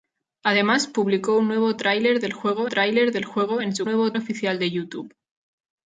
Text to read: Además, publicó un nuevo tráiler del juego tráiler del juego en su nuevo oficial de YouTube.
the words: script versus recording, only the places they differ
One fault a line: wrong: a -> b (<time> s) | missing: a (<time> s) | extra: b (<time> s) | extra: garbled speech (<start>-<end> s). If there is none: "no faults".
no faults